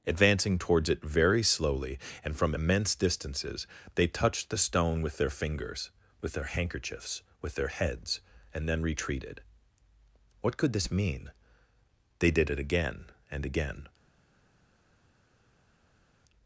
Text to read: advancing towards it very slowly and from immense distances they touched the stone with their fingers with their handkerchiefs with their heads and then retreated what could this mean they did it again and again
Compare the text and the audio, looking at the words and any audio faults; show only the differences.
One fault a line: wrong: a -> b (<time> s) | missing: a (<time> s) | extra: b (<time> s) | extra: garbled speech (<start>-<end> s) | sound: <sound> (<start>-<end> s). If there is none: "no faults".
no faults